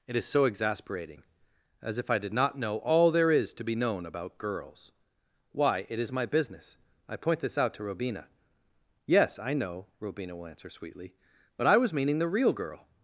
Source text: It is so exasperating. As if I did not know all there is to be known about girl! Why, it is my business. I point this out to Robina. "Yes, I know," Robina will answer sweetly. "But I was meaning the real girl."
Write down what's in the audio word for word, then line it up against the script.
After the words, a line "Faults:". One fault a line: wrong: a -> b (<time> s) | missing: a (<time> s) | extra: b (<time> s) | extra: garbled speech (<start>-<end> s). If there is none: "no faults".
It is so exasperating. As if I did not know all there is to be known about girls! Why, it is my business. I point this out to Robina. "Yes, I know," Robina will answer sweetly. "But I was meaning the real girl."
Faults:
wrong: girl -> girls (4.4 s)